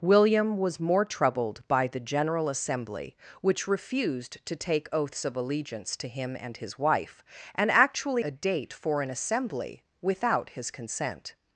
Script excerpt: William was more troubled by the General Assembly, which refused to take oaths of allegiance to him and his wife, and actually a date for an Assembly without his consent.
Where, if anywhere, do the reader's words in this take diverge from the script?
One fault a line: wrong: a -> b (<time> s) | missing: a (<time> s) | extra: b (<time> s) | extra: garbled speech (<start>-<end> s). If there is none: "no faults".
no faults